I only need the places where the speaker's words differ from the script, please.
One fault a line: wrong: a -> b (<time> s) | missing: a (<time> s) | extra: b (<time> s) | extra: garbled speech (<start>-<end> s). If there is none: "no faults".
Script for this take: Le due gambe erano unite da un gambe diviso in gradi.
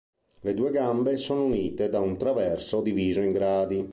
wrong: erano -> sono (1.2 s)
wrong: gambe -> traverso (2.2 s)